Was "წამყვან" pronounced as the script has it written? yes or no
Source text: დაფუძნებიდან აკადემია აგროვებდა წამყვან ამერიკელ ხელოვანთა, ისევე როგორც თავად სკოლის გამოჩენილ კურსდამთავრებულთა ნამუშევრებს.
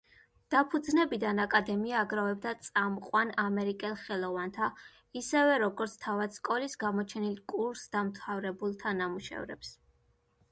yes